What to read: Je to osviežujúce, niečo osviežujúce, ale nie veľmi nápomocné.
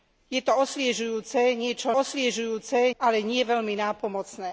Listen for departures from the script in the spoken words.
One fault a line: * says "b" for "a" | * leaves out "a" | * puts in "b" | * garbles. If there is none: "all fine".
all fine